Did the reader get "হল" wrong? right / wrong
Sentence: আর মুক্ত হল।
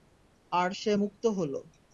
right